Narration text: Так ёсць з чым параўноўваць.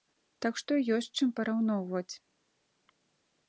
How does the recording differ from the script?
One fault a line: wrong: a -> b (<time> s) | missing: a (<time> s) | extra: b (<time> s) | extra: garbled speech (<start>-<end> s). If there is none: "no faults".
extra: што (0.6 s)